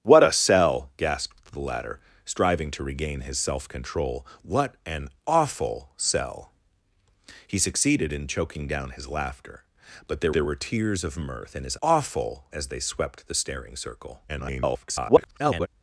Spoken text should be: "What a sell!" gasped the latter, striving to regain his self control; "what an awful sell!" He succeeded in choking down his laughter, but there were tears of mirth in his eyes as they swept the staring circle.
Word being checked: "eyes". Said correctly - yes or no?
no